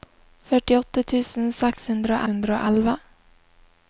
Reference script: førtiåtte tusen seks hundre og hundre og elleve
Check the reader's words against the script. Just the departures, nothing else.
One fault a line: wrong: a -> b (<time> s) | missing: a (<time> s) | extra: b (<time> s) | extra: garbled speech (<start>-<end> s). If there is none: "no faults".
no faults